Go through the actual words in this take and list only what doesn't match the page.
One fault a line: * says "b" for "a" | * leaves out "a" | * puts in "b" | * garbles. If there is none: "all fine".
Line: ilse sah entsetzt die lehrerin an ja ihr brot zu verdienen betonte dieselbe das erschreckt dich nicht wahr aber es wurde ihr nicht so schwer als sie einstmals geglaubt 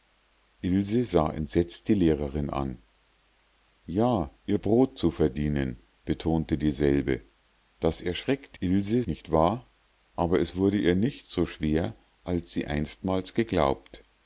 * says "ilse" for "dich"